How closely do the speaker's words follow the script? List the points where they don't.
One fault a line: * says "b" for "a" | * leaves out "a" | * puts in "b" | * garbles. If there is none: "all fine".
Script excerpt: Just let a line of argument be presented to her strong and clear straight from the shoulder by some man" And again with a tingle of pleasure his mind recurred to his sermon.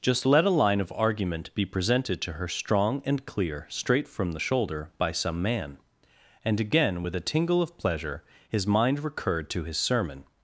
all fine